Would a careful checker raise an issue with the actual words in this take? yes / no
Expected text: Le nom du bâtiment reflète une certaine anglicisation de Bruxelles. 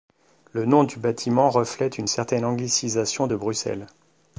no